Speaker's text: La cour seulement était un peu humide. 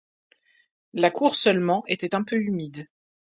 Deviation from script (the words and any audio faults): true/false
false